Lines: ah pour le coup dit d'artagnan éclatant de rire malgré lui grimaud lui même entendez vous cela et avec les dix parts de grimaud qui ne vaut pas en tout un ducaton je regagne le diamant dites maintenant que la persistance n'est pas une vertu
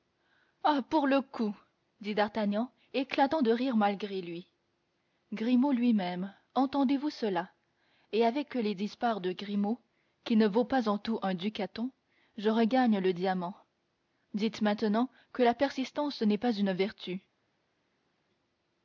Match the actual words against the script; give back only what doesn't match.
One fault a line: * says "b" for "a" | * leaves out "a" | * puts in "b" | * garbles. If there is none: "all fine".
all fine